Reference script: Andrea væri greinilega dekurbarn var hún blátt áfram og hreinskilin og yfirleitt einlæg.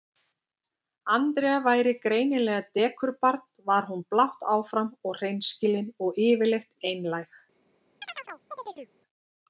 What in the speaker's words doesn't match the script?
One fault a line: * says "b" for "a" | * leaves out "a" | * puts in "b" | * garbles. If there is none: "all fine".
all fine